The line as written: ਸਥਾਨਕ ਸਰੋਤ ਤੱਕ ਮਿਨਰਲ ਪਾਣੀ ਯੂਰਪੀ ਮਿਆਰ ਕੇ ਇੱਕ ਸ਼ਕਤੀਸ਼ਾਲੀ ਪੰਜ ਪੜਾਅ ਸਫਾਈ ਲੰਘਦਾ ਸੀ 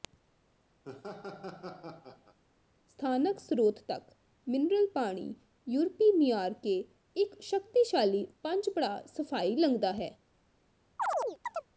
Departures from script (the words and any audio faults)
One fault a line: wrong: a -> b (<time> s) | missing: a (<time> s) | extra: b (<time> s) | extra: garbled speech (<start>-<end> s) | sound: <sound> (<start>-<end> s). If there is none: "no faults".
sound: laugh (0.8-2.4 s)
wrong: ਸੀ -> ਹੈ (9.9 s)
sound: chirp (11.0-11.7 s)